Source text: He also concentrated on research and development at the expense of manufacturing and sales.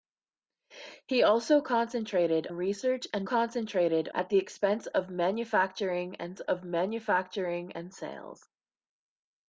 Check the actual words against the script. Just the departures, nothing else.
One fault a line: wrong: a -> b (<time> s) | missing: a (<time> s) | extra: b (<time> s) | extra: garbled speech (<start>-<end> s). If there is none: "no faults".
missing: on (2.5 s)
wrong: development -> concentrated (3.2 s)
extra: of manufacturing and (6.4 s)